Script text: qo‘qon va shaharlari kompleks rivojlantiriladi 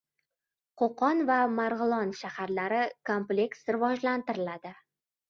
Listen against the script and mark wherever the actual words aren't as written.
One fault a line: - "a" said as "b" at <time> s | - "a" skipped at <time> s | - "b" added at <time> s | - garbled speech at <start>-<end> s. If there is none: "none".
- "marg‘ilon" added at 1.6 s